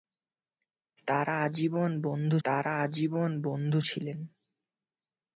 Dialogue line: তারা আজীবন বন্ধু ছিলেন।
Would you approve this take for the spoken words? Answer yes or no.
no